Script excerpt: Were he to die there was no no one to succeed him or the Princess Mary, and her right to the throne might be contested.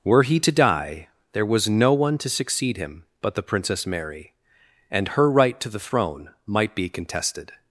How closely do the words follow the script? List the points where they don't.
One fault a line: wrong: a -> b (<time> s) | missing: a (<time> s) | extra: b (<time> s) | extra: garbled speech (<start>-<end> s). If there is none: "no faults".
missing: no (1.9 s)
wrong: or -> but (3.2 s)